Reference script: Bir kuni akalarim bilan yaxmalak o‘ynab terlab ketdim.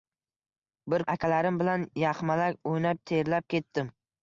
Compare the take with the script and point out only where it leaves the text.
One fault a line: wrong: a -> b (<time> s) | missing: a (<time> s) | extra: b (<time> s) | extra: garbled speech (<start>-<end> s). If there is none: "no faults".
missing: kuni (1.1 s)